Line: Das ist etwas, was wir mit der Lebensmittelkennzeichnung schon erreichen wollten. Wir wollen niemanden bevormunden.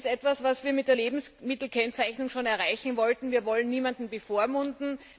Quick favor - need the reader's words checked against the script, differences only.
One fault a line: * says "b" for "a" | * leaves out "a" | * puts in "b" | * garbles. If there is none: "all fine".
all fine